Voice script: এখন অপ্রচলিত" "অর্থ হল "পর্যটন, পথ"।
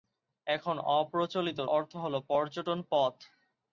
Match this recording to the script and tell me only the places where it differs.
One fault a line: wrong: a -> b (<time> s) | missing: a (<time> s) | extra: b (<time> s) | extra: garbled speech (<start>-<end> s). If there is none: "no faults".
no faults